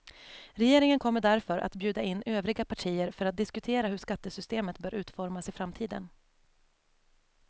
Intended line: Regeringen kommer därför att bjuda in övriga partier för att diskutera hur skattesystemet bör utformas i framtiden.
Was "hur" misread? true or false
false